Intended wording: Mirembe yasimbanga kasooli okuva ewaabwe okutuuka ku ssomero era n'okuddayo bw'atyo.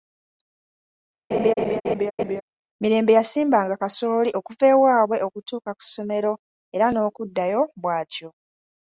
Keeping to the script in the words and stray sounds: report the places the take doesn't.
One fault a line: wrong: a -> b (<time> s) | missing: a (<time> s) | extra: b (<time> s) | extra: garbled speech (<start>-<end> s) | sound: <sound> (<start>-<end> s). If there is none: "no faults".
sound: laugh (1.3-2.4 s)